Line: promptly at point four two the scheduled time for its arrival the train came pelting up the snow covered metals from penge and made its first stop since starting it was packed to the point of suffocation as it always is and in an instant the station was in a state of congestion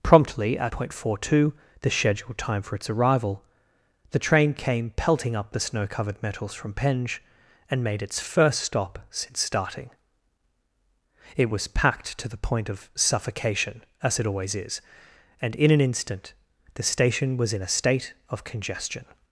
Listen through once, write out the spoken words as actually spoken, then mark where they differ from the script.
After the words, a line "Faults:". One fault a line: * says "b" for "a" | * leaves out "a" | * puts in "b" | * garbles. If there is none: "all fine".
promptly at point four two the scheduled time for its arrival the train came pelting up the snow covered metals from penge and made its first stop since starting it was packed to the point of suffocation as it always is and in an instant the station was in a state of congestion
Faults:
all fine